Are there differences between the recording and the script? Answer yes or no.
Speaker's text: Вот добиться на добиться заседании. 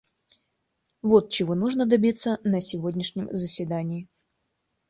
yes